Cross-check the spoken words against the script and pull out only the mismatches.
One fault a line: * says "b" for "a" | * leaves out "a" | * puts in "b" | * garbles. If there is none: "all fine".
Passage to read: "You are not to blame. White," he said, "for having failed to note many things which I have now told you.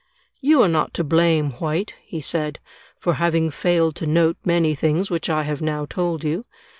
all fine